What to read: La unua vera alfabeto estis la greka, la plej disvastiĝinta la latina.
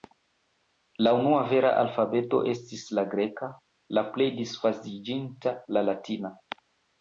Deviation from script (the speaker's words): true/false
false